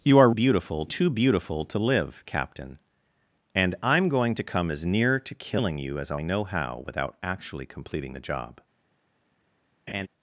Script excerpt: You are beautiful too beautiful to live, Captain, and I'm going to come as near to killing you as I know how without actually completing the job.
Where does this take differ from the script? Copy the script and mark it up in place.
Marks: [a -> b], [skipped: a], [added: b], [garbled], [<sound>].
You are beautiful too beautiful to live, Captain, and I'm going to come as near to killing you as I know how without actually completing the job. [laugh]